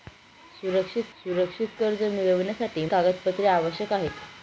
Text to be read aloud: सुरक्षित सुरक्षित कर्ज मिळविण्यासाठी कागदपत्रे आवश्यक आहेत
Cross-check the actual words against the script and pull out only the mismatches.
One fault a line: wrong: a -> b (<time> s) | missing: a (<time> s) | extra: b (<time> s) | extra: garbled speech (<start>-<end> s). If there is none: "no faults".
no faults